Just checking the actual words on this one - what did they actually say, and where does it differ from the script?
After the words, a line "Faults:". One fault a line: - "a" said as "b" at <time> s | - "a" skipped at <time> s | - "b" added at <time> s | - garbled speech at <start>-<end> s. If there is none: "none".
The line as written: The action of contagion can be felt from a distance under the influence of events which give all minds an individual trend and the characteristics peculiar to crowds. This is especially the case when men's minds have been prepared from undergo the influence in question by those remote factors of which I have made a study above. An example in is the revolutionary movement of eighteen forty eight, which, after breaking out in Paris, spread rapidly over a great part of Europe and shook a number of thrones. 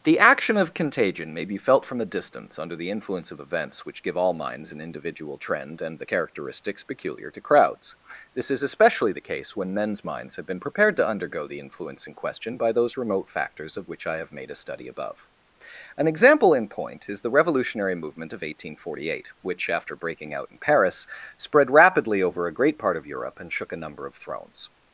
The action of contagion may be felt from a distance under the influence of events which give all minds an individual trend and the characteristics peculiar to crowds. This is especially the case when men's minds have been prepared to undergo the influence in question by those remote factors of which I have made a study above. An example in point is the revolutionary movement of eighteen forty eight, which, after breaking out in Paris, spread rapidly over a great part of Europe and shook a number of thrones.
Faults:
- "can" said as "may" at 1.3 s
- "from" said as "to" at 11.0 s
- "point" added at 16.7 s